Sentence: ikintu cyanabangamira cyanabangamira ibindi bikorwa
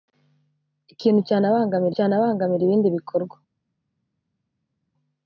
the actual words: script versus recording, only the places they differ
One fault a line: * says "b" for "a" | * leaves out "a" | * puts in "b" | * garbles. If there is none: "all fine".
all fine